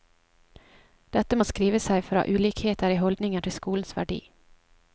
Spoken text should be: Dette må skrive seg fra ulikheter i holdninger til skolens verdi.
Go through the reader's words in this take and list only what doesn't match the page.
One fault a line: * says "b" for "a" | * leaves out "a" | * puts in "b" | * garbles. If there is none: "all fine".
all fine